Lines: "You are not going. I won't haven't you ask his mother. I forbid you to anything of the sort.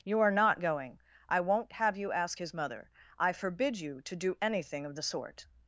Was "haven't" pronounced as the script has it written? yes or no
no